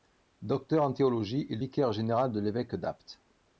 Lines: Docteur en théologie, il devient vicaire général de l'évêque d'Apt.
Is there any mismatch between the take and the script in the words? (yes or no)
yes